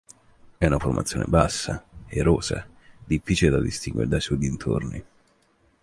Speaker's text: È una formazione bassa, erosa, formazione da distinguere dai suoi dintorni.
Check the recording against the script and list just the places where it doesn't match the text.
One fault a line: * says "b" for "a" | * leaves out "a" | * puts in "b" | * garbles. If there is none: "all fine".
* says "difficile" for "formazione"